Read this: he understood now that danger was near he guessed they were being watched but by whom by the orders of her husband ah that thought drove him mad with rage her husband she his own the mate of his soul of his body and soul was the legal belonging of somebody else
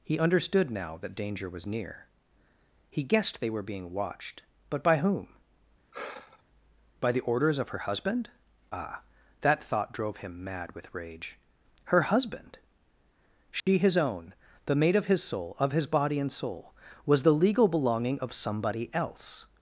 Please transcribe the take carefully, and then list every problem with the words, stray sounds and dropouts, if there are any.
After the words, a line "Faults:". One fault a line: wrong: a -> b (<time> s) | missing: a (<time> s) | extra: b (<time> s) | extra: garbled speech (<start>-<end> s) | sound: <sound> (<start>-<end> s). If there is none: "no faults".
he understood now that danger was near he guessed they were being watched but by whom by the orders of her husband ah that thought drove him mad with rage her husband she his own the mate of his soul of his body and soul was the legal belonging of somebody else
Faults:
sound: sigh (5.9-6.4 s)
sound: dropout (13.6-13.7 s)